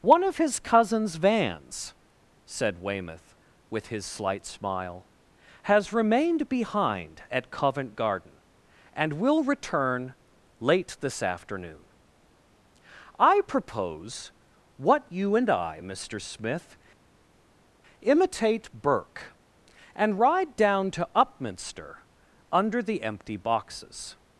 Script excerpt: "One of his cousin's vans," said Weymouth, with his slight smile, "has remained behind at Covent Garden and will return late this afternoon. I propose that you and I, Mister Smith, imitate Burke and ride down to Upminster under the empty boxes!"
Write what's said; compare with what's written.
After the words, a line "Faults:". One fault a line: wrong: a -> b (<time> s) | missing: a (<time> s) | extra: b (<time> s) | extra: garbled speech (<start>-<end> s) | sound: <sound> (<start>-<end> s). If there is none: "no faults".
"One of his cousin's vans," said Weymouth, with his slight smile, "has remained behind at Covent Garden and will return late this afternoon. I propose what you and I, Mister Smith, imitate Burke and ride down to Upminster under the empty boxes!"
Faults:
wrong: that -> what (14.8 s)